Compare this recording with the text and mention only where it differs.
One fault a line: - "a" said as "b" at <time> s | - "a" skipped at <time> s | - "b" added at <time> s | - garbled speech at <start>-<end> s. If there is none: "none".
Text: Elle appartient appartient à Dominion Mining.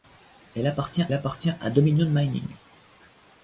none